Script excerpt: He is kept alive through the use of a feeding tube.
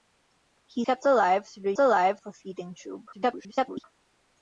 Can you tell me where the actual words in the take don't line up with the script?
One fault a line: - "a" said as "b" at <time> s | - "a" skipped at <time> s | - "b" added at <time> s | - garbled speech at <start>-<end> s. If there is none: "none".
- "is" skipped at 0.8 s
- "use" said as "alive" at 1.8 s
- garbled speech at 3.1-3.8 s